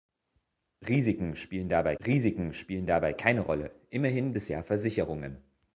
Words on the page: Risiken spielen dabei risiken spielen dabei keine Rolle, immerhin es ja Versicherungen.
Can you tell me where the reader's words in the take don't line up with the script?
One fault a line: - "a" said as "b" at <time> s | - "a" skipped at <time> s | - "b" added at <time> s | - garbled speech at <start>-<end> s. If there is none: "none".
none